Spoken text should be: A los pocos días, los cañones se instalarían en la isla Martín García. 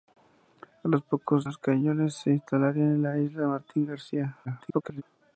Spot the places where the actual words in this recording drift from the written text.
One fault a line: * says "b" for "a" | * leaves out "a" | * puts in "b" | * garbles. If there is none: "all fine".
* leaves out "días"
* garbles